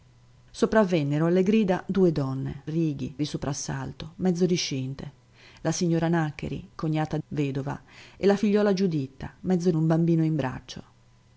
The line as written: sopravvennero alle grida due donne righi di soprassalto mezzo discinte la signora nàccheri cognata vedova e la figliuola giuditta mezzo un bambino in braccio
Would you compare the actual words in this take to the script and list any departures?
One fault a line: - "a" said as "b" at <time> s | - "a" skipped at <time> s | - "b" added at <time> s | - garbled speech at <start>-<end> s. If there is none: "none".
none